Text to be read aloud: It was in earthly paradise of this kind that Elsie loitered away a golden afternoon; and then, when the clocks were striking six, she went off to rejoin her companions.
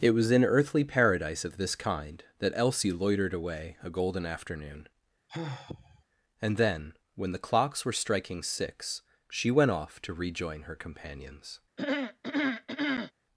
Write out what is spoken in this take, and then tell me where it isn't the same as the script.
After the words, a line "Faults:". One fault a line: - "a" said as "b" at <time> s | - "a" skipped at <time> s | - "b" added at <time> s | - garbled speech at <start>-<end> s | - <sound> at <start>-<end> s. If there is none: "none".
It was in earthly paradise of this kind that Elsie loitered away a golden afternoon; and then, when the clocks were striking six, she went off to rejoin her companions.
Faults:
- sigh at 5.3-6.0 s
- throat clearing at 11.8-13.1 s